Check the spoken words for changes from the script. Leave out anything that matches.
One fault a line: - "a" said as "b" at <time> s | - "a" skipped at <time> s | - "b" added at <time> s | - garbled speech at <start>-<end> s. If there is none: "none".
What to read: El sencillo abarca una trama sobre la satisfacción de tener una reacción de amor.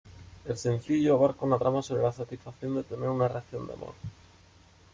none